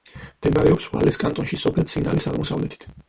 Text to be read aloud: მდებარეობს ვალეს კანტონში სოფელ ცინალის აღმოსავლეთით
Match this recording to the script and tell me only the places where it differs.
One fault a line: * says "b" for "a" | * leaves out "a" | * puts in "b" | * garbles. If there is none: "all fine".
all fine